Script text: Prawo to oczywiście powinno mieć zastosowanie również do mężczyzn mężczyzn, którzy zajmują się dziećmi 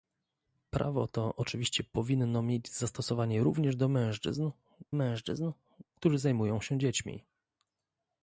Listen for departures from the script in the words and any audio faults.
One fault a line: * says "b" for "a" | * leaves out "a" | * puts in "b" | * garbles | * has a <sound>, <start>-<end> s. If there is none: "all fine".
all fine